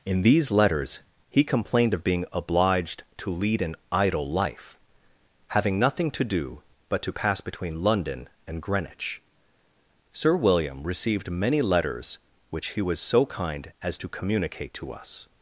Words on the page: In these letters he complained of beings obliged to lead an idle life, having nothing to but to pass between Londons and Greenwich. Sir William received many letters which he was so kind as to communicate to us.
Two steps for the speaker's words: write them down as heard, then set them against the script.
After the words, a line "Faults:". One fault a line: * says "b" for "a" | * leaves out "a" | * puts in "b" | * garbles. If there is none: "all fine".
In these letters he complained of being obliged to lead an idle life, having nothing to do but to pass between London and Greenwich. Sir William received many letters which he was so kind as to communicate to us.
Faults:
* says "being" for "beings"
* puts in "do"
* says "London" for "Londons"